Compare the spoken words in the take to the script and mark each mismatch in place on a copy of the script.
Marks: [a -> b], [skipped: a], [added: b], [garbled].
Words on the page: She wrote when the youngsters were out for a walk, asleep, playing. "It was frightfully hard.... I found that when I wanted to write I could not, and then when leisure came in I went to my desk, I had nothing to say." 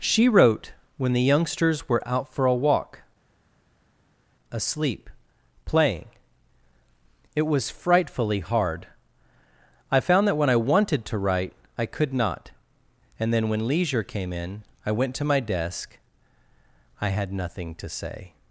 She wrote when the youngsters were out for a walk, asleep, playing. "It was frightfully hard.... I found that when I wanted to write I could not, and then when leisure came in I went to my desk, I had nothing to say."